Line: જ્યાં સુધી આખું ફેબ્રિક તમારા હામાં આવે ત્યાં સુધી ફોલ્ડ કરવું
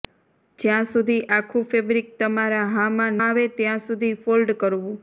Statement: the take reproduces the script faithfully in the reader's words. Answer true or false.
true